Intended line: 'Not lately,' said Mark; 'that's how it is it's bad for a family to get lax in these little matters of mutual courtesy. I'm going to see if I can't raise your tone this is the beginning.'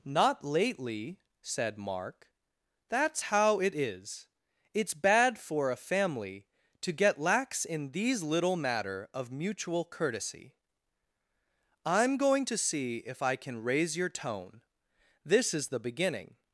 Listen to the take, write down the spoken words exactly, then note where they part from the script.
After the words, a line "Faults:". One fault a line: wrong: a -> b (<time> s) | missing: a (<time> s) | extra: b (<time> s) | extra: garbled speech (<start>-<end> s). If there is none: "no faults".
'Not lately,' said Mark; 'that's how it is it's bad for a family to get lax in these little matter of mutual courtesy. I'm going to see if I can raise your tone this is the beginning.'
Faults:
wrong: matters -> matter (8.6 s)
wrong: can't -> can (13.4 s)